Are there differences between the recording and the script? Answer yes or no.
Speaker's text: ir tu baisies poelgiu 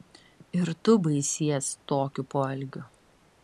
yes